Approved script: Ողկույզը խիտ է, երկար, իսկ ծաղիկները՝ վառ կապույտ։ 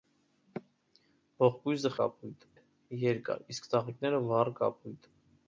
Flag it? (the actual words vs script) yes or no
yes